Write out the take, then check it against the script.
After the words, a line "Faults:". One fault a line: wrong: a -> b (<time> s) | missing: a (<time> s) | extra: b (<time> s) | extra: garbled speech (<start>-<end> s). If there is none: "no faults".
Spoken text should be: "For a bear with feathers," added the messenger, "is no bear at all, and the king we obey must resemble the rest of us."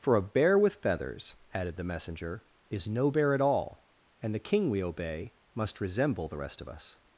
"For a bear with feathers," added the messenger, "is no bear at all, and the king we obey must resemble the rest of us."
Faults:
no faults